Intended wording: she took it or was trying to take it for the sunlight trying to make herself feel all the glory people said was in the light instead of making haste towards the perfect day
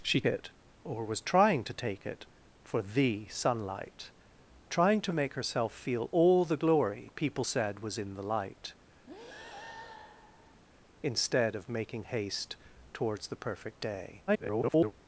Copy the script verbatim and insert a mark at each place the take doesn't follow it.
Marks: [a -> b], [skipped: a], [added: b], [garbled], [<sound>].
she [skipped: took] it or was trying to take it for the sunlight trying to make herself feel all the glory people said was in the light [breath] instead of making haste towards the perfect day [garbled]